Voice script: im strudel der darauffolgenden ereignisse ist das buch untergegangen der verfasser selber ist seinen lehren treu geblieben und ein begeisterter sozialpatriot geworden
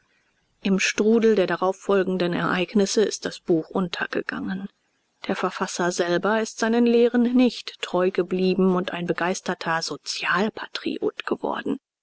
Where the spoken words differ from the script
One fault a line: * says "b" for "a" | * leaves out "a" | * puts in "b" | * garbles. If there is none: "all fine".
* puts in "nicht"